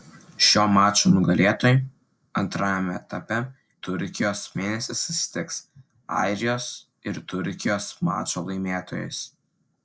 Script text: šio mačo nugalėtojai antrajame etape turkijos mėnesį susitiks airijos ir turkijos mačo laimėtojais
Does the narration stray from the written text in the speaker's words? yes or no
no